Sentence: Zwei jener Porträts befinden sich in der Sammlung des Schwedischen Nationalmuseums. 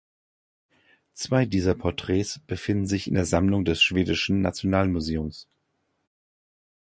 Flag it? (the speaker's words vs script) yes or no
yes